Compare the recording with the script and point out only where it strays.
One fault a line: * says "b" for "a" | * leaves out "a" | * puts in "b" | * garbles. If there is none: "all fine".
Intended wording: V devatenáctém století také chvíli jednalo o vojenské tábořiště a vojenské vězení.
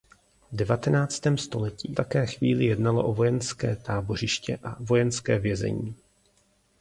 all fine